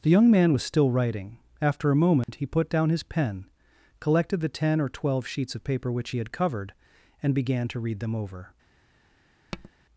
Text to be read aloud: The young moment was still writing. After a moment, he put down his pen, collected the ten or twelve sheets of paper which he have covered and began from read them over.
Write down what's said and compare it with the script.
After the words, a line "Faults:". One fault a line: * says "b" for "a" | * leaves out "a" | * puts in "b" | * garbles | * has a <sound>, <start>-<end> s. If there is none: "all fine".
The young man was still writing. After a moment, he put down his pen, collected the ten or twelve sheets of paper which he had covered and began to read them over.
Faults:
* says "man" for "moment"
* has a dropout, 2.2-2.3 s
* says "had" for "have"
* says "to" for "from"
* has a tap, 9.5-9.7 s